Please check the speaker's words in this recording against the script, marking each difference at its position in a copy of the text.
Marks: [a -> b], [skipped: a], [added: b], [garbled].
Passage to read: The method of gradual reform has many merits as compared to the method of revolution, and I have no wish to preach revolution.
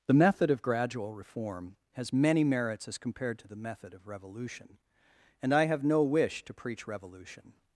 The method of gradual reform has many merits as compared to the method of revolution, and I have no wish to preach revolution.